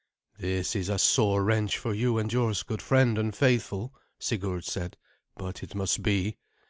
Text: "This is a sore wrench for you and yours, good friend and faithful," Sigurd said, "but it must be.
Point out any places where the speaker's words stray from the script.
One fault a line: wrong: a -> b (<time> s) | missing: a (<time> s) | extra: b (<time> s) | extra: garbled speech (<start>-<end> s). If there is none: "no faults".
no faults